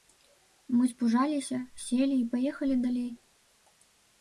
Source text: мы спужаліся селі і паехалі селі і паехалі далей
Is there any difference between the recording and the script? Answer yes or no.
yes